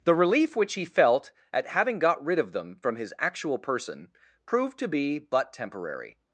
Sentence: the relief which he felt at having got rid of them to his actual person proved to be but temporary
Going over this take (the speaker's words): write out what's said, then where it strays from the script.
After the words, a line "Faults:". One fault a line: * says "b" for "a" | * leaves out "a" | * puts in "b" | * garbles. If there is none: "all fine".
the relief which he felt at having got rid of them from his actual person proved to be but temporary
Faults:
* says "from" for "to"